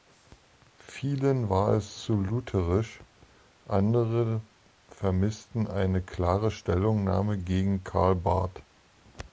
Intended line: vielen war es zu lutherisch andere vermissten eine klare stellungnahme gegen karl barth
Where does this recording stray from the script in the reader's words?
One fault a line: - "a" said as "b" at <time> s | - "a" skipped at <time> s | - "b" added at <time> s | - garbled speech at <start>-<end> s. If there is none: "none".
none